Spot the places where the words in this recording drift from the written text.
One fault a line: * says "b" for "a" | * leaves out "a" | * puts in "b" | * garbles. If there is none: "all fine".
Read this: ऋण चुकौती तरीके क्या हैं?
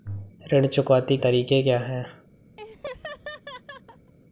all fine